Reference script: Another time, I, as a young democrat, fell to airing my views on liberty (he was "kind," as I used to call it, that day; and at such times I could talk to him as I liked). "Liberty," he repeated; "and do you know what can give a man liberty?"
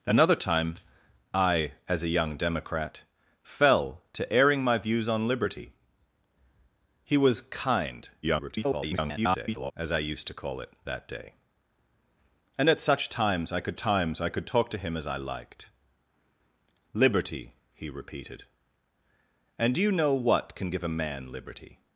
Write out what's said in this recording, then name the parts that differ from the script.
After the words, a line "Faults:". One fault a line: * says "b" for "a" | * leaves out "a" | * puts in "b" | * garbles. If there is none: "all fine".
Another time, I, as a young democrat, fell to airing my views on liberty (he was "kind," [garbled] as I used to call it, that day; and at such times I could times I could talk to him as I liked). "Liberty," he repeated; "and do you know what can give a man liberty?"
Faults:
* garbles
* puts in "times I could"